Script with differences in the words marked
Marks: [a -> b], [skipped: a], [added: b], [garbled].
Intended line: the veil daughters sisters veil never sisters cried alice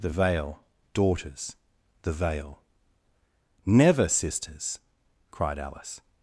the veil daughters [sisters -> the] veil never sisters cried alice